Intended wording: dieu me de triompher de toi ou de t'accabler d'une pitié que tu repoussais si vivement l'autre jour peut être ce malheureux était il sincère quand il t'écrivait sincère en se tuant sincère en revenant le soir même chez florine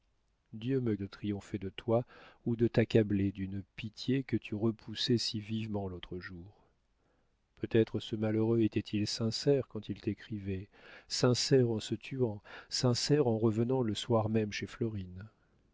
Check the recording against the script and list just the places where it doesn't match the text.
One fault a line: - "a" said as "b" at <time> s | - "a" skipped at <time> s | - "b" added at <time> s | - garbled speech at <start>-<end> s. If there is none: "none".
none